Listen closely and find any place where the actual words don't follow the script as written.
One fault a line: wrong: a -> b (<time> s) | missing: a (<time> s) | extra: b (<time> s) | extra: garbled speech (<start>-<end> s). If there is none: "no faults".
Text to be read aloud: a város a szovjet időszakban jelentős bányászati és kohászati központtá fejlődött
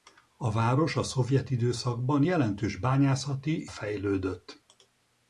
missing: és kohászati központtá (3.7 s)